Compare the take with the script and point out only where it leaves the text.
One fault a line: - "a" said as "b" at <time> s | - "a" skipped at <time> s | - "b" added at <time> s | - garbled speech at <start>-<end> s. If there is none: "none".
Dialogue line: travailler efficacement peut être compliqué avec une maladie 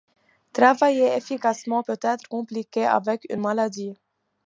none